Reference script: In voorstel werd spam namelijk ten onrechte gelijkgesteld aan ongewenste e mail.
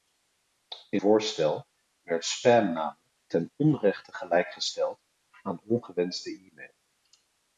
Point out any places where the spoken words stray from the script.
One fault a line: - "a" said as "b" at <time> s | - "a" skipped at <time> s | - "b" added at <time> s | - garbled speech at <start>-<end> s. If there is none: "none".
none